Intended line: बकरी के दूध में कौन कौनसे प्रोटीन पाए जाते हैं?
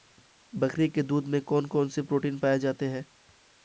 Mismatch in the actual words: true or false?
false